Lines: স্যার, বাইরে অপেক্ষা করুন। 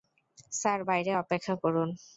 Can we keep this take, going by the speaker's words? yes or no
yes